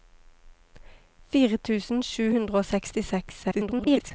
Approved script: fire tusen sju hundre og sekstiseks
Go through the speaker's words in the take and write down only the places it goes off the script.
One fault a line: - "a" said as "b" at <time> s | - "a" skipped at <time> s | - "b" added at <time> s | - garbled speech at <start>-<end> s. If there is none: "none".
- garbled speech at 3.4-4.1 s